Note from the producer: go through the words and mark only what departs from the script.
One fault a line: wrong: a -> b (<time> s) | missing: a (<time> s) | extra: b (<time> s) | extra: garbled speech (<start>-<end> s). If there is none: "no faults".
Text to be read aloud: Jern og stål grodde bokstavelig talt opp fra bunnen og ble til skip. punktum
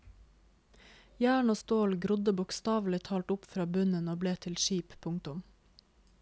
no faults